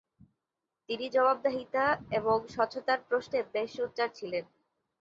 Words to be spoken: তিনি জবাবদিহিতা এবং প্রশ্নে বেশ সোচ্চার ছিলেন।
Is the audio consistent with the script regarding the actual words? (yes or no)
no